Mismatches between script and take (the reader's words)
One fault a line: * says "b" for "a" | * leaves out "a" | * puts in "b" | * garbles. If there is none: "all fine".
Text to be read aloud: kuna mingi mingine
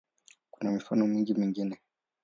* puts in "mifano"